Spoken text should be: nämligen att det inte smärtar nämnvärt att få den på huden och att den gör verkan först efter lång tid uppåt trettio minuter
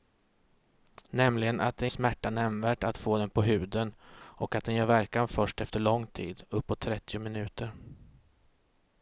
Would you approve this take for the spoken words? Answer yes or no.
no